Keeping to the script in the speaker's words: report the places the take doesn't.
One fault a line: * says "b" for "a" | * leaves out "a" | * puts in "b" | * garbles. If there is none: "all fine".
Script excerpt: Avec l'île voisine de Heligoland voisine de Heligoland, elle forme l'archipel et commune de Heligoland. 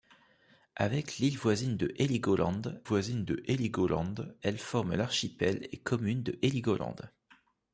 all fine